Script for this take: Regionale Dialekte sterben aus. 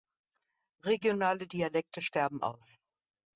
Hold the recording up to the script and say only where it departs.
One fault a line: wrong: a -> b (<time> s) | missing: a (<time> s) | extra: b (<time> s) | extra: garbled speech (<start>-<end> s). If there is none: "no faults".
no faults